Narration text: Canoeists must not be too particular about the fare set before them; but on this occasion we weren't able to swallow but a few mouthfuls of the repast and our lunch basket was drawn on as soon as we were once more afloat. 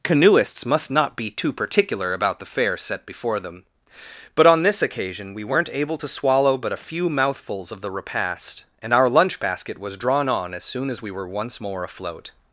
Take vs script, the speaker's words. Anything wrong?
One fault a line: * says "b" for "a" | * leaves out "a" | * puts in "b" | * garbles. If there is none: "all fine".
all fine